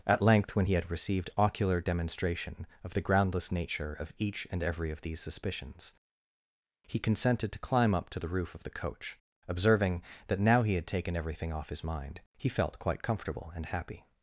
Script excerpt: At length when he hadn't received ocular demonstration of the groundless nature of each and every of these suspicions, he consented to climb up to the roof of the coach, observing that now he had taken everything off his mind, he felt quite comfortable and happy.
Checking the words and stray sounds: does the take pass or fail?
fail